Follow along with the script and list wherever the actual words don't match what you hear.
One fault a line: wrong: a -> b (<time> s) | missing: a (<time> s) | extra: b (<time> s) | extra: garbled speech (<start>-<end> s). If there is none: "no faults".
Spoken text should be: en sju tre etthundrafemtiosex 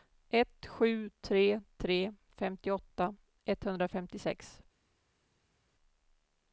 wrong: en -> ett (0.3 s)
extra: tre femtioåtta (1.8 s)